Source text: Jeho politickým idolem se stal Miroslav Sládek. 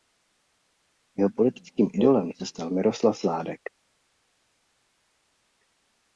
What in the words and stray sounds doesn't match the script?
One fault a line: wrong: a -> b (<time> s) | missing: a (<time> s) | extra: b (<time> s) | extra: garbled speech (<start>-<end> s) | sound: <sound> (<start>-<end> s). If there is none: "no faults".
no faults